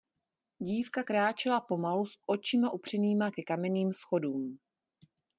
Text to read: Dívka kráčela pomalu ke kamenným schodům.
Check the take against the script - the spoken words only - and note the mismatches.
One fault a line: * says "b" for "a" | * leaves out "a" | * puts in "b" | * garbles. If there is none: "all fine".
* puts in "s očima upřenýma"